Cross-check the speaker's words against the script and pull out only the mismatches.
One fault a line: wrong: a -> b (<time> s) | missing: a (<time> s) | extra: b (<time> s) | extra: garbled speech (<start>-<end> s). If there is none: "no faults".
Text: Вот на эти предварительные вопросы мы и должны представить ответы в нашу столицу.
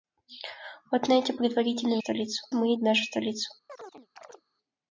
wrong: вопросы -> столицу (2.0 s)
missing: должны представить ответы (2.8 s)